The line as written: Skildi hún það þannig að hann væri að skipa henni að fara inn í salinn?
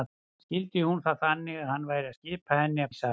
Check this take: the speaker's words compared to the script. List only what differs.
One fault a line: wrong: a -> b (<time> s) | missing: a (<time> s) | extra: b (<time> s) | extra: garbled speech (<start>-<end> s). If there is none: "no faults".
missing: fara inn (2.9 s)